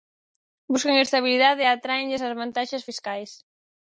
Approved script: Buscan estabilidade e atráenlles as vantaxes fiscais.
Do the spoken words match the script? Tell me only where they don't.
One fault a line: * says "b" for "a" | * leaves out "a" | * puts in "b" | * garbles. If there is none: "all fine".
all fine